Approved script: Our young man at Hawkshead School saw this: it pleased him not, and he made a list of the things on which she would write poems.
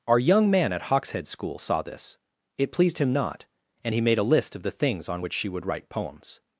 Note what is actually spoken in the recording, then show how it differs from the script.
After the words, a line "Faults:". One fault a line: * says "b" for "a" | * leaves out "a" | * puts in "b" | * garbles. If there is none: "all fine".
Our young man at Hawkshead School saw this: it pleased him not, and he made a list of the things on which she would write poems.
Faults:
all fine